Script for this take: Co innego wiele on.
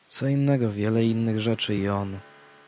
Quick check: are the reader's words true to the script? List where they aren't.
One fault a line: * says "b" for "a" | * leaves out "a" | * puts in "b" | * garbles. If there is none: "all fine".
* puts in "innych rzeczy i"